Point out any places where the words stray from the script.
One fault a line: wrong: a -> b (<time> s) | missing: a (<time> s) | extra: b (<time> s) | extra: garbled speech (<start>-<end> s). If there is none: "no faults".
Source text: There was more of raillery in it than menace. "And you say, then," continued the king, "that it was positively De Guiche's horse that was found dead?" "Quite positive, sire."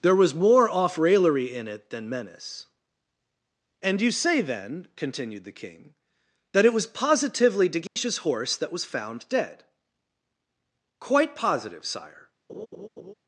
wrong: of -> off (0.7 s)